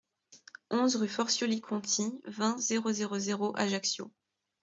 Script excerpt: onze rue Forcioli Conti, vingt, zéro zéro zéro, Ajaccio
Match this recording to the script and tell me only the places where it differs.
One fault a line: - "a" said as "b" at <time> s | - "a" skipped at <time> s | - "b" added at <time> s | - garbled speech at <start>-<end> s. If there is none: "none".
none